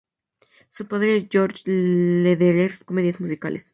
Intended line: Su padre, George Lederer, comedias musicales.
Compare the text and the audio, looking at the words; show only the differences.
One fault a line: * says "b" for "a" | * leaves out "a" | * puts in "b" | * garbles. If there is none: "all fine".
all fine